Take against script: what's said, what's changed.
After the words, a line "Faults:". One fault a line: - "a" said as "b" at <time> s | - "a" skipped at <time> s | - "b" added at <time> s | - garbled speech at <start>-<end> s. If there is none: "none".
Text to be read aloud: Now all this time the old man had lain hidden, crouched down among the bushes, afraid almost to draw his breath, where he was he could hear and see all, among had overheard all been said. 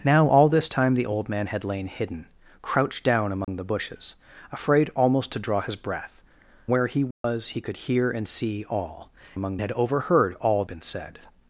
Now all this time the old man had lain hidden, crouched down among the bushes, afraid almost to draw his breath, where he was he could hear and see all, among had overheard all been said.
Faults:
none